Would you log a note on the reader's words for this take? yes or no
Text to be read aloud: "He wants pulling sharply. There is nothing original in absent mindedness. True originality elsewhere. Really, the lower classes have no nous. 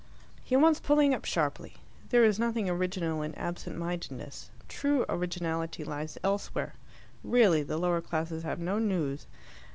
yes